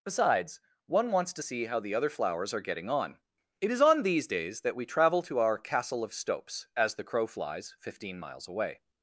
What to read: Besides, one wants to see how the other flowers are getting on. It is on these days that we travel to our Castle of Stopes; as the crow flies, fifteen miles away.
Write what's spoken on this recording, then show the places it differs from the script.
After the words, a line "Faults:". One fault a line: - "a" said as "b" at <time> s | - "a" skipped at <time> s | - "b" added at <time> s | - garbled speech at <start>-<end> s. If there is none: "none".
Besides, one wants to see how the other flowers are getting on. It is on these days that we travel to our Castle of Stopes; as the crow flies, fifteen miles away.
Faults:
none